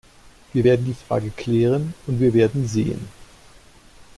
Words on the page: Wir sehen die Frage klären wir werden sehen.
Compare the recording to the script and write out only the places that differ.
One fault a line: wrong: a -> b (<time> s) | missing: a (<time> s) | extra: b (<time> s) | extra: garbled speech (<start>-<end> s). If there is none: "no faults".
wrong: sehen -> werden (0.6 s)
extra: und (2.1 s)